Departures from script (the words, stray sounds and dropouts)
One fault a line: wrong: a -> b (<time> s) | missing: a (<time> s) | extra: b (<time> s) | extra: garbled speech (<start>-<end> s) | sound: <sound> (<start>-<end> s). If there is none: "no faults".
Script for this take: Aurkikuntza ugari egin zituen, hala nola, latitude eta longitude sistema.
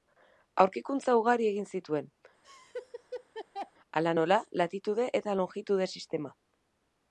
sound: laugh (2.4-3.7 s)